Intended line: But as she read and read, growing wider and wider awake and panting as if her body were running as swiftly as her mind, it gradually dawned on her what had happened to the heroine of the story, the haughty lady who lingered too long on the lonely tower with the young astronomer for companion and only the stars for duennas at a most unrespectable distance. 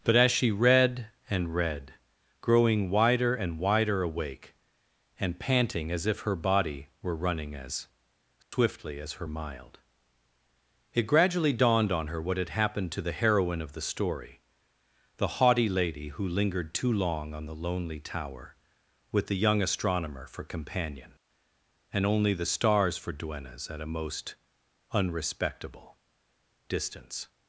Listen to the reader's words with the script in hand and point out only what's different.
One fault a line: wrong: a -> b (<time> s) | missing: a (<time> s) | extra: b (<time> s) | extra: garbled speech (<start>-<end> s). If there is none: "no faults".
wrong: mind -> mild (9.3 s)